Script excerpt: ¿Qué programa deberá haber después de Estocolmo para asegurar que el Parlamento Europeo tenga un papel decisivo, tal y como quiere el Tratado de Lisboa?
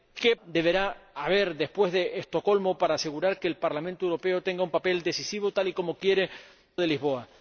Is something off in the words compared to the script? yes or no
yes